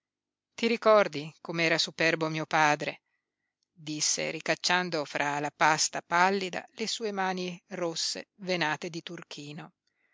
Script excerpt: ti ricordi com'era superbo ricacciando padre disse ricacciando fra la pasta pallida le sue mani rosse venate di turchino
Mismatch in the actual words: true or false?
true